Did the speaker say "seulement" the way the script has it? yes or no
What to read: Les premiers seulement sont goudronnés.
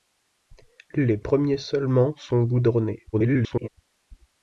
yes